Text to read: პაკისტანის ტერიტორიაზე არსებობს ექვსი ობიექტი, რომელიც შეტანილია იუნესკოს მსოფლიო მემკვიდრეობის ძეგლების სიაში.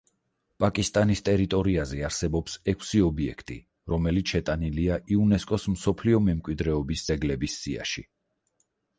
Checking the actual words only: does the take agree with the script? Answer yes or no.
yes